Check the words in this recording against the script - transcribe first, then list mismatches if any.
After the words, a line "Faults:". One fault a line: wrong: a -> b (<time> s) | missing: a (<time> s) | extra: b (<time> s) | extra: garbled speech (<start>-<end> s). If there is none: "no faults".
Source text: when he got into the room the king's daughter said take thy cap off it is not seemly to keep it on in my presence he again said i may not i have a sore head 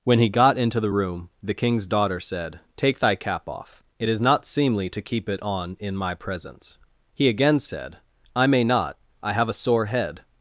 when he got into the room the king's daughter said take thy cap off it is not seemly to keep it on in my presence he again said i may not i have a sore head
Faults:
no faults